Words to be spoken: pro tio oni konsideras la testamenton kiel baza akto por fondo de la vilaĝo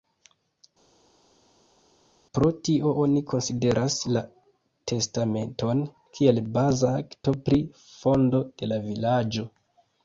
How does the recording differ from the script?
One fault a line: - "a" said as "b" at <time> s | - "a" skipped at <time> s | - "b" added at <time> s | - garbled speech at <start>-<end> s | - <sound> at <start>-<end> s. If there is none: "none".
- "por" said as "pri" at 7.5 s